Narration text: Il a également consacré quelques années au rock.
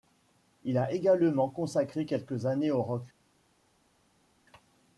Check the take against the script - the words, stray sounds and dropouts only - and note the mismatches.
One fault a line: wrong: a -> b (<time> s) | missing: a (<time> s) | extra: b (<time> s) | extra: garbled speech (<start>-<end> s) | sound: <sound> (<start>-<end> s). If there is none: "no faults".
no faults